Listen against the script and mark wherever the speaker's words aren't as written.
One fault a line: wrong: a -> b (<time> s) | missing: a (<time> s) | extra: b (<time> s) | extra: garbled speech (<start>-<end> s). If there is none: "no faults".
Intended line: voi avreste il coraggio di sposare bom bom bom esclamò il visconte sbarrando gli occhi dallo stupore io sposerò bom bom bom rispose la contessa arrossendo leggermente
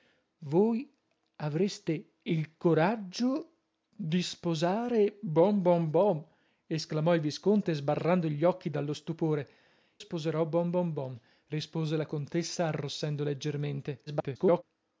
missing: io (9.5 s)
extra: garbled speech (14.1-14.6 s)